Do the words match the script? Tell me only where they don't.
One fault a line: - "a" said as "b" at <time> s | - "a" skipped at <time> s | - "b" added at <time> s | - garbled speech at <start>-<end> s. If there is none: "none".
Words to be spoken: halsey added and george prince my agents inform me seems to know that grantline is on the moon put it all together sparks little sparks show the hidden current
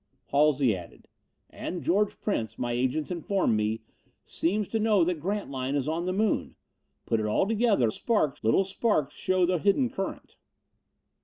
none